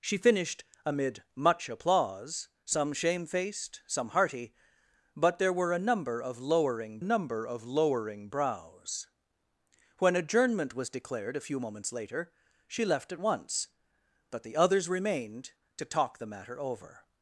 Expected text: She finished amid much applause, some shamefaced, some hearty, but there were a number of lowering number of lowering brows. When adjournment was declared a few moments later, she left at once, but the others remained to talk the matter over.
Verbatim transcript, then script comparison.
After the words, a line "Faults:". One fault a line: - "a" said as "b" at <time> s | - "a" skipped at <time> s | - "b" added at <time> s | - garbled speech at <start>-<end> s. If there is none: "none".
She finished amid much applause, some shamefaced, some hearty, but there were a number of lowering number of lowering brows. When adjournment was declared a few moments later, she left at once, but the others remained to talk the matter over.
Faults:
none